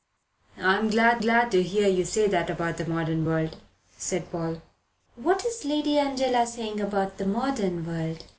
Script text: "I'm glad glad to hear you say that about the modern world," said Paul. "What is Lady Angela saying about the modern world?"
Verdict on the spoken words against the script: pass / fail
pass